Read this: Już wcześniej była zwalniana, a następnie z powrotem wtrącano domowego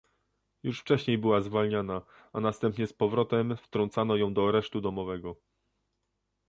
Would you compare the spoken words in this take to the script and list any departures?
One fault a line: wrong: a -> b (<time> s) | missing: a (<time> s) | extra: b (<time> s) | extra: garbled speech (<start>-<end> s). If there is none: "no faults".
extra: ją do aresztu (4.2 s)